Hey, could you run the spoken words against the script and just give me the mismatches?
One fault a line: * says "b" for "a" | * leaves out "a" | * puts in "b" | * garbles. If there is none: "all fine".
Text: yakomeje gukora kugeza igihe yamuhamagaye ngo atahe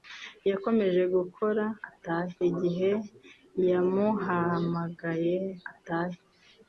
* says "atahe" for "kugeza"
* leaves out "ngo"